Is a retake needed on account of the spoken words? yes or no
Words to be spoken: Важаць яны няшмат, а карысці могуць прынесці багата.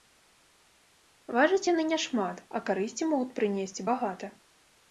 no